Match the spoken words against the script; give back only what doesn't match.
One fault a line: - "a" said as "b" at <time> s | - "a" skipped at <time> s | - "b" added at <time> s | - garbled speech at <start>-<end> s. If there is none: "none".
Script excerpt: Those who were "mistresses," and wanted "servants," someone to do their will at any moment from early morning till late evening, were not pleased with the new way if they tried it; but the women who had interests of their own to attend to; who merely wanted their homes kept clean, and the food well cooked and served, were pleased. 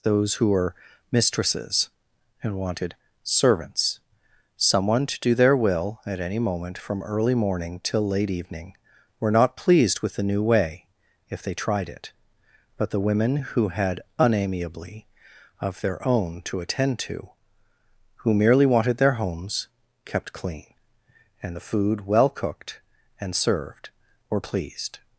- "interests" said as "unamiably" at 14.2 s